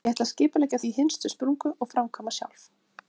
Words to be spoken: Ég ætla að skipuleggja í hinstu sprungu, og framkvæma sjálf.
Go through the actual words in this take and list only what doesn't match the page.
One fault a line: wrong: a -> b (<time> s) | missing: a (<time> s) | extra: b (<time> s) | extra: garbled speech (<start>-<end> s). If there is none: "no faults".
no faults